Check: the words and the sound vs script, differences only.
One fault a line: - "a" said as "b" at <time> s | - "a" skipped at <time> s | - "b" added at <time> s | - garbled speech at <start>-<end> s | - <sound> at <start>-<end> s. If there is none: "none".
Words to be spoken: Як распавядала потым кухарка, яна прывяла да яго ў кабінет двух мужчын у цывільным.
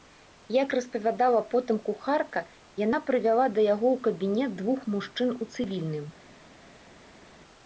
none